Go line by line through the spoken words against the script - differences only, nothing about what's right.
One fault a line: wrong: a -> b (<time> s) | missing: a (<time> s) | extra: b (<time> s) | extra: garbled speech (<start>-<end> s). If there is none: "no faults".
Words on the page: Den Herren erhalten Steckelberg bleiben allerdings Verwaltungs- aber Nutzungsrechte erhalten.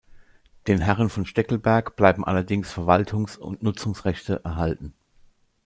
wrong: erhalten -> von (1.1 s)
wrong: aber -> und (3.4 s)